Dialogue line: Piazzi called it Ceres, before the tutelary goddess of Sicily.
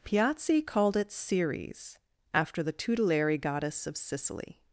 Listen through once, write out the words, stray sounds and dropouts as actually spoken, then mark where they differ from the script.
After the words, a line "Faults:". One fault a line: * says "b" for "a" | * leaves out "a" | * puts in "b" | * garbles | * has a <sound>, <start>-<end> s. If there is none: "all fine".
Piazzi called it Ceres, after the tutelary goddess of Sicily.
Faults:
* says "after" for "before"